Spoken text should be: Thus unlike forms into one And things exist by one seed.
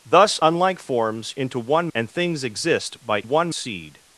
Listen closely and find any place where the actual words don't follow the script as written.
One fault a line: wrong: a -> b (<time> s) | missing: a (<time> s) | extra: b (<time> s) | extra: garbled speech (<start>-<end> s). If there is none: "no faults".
no faults